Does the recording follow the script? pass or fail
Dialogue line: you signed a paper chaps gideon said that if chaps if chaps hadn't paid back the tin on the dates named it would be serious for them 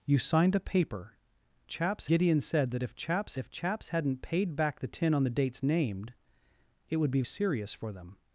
pass